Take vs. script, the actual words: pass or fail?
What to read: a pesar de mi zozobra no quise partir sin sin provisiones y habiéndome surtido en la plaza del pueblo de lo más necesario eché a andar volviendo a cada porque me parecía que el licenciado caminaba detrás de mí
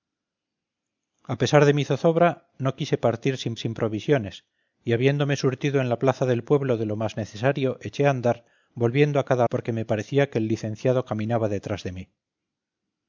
pass